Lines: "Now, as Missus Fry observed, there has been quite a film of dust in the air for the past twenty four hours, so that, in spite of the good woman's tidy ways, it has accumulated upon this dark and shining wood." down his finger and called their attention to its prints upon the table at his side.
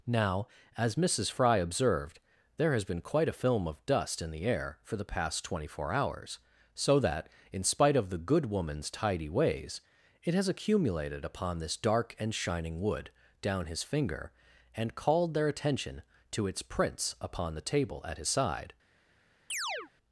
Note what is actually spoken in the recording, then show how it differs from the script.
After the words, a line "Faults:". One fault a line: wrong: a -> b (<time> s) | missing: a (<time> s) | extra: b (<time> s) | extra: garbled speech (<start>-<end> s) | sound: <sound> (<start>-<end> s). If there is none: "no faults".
"Now, as Missus Fry observed, there has been quite a film of dust in the air for the past twenty four hours, so that, in spite of the good woman's tidy ways, it has accumulated upon this dark and shining wood." down his finger and called their attention to its prints upon the table at his side.
Faults:
sound: chirp (19.5-19.9 s)